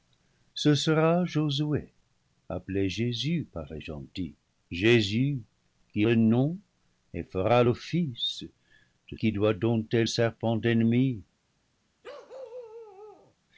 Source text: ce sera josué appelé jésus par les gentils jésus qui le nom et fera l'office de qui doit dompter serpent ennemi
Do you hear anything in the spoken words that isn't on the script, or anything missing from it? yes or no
no